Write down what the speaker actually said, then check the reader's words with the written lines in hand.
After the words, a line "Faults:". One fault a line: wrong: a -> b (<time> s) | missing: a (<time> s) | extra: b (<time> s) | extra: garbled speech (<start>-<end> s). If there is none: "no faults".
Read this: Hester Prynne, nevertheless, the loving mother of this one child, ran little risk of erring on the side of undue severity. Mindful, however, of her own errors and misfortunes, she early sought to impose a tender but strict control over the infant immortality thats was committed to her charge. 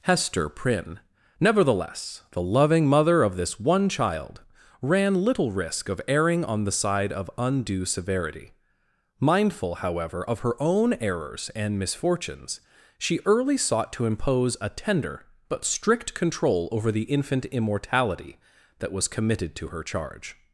Hester Prynne, nevertheless, the loving mother of this one child, ran little risk of erring on the side of undue severity. Mindful, however, of her own errors and misfortunes, she early sought to impose a tender but strict control over the infant immortality that was committed to her charge.
Faults:
wrong: thats -> that (18.8 s)